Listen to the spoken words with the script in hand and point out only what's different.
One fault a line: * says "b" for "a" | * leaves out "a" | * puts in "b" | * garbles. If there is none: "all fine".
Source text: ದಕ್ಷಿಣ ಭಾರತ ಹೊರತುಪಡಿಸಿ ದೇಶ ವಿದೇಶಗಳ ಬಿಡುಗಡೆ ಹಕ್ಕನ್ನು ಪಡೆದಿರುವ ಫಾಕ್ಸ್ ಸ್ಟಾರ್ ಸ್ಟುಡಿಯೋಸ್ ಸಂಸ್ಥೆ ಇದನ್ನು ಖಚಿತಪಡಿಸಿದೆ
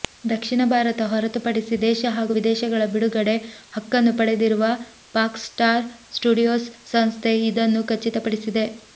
* puts in "ಹಾಗೂ"